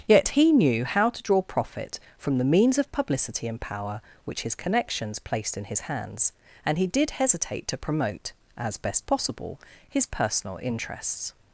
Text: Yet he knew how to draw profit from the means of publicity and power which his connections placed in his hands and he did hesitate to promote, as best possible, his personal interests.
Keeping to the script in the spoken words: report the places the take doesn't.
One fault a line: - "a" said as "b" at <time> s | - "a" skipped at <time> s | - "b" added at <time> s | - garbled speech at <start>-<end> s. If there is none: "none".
none